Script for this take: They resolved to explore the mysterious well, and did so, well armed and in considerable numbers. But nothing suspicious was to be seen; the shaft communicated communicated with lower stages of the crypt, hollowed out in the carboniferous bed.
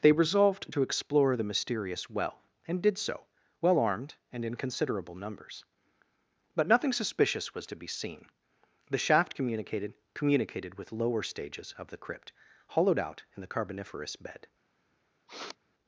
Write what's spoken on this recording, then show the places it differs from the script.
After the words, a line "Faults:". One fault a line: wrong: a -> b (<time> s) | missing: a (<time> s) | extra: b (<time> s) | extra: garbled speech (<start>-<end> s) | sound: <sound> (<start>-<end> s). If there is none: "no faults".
They resolved to explore the mysterious well, and did so, well armed and in considerable numbers. But nothing suspicious was to be seen; the shaft communicated communicated with lower stages of the crypt, hollowed out in the carboniferous bed.
Faults:
sound: sniff (15.3-15.6 s)